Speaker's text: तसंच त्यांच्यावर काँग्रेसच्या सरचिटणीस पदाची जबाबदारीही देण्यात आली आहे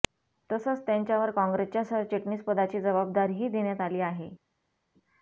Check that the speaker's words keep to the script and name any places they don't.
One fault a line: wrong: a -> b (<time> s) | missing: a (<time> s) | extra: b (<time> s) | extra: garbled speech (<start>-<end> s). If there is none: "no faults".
no faults